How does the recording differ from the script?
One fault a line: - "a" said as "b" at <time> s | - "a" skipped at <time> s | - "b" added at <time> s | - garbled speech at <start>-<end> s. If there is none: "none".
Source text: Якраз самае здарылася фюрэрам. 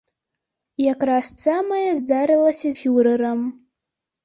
none